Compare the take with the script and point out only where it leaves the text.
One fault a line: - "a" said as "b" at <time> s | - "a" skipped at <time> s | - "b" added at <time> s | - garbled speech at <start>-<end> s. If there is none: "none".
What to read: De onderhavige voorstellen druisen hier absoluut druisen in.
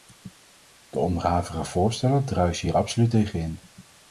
- "druisen" said as "tegen" at 3.1 s